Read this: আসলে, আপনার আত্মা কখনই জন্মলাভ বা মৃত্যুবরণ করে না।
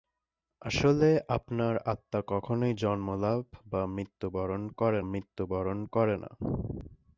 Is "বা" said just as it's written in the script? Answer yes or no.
yes